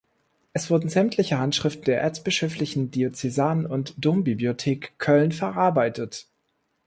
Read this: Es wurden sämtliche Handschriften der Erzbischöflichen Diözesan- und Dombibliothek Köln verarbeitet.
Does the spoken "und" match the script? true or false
true